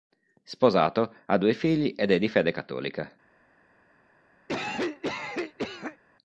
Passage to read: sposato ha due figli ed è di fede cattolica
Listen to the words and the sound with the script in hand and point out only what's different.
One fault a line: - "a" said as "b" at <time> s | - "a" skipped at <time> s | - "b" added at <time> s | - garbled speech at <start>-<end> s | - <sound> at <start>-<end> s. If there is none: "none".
- cough at 4.5-6.0 s